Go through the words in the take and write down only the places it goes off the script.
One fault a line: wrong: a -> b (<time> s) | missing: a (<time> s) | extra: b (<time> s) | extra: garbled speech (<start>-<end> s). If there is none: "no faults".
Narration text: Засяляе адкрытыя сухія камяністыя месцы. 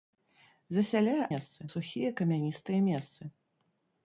wrong: адкрытыя -> месцы (1.3 s)